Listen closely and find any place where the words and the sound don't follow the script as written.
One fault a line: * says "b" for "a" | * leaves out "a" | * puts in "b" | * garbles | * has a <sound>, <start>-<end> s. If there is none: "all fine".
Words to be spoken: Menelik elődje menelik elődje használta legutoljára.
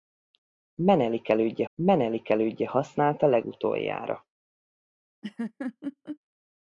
* has a laugh, 5.2-6.2 s